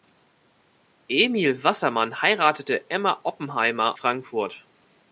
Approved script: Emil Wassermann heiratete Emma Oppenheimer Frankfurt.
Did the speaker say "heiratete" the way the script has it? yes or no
yes